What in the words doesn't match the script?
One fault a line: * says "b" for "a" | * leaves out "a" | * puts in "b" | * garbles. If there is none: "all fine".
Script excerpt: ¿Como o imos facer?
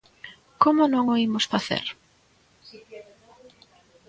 * puts in "non"